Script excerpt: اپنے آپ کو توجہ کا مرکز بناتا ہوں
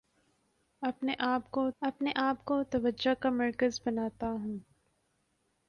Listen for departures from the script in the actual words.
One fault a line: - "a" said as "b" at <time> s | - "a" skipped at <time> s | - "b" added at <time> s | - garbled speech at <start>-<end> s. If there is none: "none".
- "اپنے آپ کو" added at 1.8 s